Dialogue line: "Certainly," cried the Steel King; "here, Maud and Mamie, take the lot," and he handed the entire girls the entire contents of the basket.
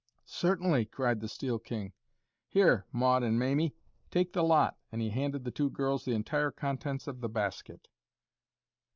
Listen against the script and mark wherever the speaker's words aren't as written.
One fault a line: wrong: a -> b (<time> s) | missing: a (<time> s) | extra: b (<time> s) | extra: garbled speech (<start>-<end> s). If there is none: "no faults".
wrong: entire -> two (5.5 s)